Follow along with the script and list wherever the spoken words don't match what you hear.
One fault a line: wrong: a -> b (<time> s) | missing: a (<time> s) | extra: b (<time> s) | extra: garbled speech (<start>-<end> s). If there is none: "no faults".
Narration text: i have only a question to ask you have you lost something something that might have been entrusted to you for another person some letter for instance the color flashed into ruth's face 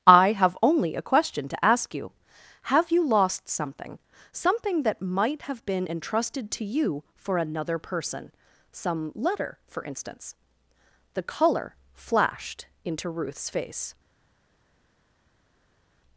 no faults